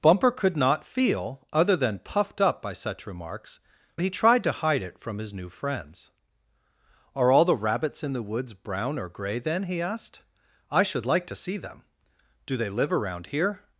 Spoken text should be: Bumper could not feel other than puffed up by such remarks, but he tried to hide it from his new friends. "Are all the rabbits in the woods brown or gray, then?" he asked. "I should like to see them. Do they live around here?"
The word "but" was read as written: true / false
false